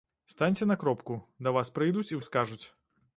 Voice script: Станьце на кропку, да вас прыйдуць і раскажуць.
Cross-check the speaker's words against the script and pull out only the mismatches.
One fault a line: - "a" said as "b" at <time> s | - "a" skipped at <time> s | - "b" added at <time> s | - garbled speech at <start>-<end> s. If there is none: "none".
none